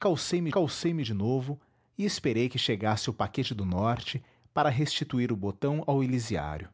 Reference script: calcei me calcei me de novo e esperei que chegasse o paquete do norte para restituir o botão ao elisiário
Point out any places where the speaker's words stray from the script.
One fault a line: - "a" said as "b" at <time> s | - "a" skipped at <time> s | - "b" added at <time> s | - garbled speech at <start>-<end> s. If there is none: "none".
none